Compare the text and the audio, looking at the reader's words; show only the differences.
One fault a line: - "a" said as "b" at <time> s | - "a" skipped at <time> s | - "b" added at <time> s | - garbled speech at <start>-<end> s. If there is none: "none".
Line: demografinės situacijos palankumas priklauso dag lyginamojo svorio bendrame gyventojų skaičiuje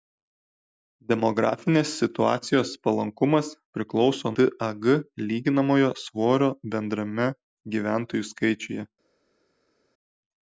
none